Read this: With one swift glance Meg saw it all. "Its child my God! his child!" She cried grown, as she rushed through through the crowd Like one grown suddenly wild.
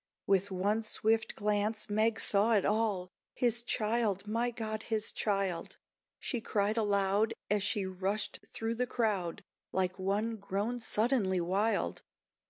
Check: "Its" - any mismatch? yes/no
yes